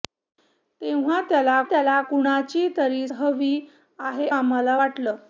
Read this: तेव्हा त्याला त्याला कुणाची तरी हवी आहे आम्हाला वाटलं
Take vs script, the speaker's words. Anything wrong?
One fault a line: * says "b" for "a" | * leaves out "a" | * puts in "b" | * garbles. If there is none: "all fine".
all fine